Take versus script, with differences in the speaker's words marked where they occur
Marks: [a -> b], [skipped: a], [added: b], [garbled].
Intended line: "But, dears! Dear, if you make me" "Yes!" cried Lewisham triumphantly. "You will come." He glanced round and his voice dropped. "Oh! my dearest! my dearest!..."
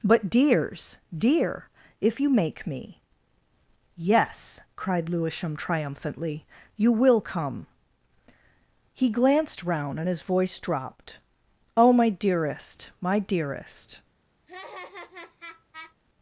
"But, dears! Dear, if you make me" "Yes!" cried Lewisham triumphantly. "You will come." He glanced round and his voice dropped. "Oh! my dearest! my dearest!..."